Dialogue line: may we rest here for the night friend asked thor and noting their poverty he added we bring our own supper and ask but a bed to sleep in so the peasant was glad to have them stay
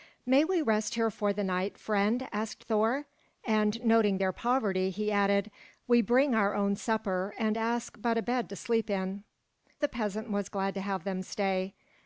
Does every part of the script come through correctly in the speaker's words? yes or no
no